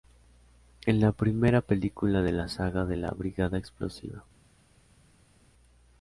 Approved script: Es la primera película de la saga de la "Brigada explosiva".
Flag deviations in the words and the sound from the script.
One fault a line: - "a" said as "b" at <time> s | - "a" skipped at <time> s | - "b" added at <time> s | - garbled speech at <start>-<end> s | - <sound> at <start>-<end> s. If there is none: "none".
none